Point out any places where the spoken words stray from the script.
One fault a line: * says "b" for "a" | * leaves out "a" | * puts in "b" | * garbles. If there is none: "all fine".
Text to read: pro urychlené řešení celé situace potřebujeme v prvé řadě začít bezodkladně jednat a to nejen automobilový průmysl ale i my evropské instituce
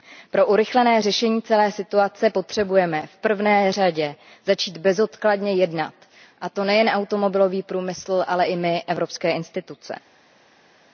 all fine